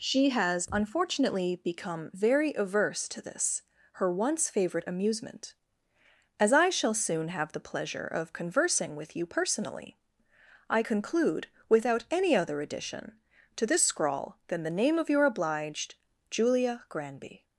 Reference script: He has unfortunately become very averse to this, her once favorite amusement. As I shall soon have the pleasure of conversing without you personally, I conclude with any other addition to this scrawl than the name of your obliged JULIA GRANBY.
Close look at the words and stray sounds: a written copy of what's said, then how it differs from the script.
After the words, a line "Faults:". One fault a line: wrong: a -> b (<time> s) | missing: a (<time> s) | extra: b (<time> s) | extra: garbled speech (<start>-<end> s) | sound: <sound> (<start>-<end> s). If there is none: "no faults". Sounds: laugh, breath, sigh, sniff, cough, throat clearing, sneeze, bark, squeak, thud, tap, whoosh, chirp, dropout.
She has unfortunately become very averse to this, her once favorite amusement. As I shall soon have the pleasure of conversing with you personally, I conclude without any other addition to this scrawl than the name of your obliged JULIA GRANBY.
Faults:
wrong: He -> She (0.0 s)
wrong: without -> with (8.9 s)
wrong: with -> without (11.7 s)